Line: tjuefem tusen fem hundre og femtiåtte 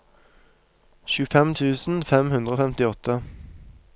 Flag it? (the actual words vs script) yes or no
no